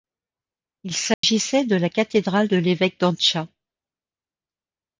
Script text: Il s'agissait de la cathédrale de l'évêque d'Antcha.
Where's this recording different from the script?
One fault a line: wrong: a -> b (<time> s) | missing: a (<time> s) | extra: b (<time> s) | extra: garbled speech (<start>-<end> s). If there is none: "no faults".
no faults